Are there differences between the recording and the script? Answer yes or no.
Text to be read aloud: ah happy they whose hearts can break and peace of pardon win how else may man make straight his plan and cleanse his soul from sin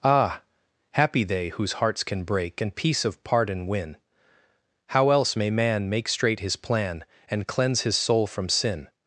no